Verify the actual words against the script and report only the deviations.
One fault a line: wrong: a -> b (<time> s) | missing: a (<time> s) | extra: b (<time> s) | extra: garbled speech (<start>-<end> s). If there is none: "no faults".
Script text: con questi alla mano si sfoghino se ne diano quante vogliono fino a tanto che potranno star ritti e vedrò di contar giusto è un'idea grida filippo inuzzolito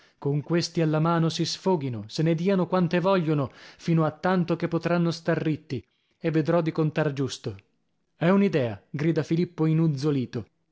no faults